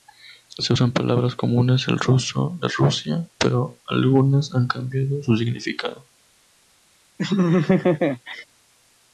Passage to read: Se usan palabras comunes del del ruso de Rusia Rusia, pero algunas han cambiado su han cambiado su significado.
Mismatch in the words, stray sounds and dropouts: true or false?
true